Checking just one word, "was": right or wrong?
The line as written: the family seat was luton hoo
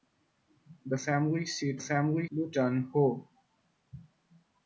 wrong